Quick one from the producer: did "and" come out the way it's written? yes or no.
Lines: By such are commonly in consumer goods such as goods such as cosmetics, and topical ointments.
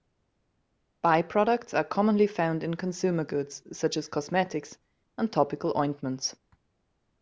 yes